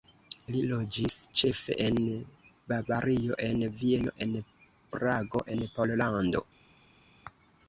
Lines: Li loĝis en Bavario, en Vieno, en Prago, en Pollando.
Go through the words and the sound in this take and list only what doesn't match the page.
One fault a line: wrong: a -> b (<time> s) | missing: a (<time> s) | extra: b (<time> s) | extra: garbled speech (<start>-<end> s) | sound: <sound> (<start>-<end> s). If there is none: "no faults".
extra: ĉefe (1.4 s)